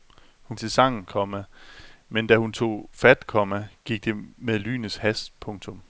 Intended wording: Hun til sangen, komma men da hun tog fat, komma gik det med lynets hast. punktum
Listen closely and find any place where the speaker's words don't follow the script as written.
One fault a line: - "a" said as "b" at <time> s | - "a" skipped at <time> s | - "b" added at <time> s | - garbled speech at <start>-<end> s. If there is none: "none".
none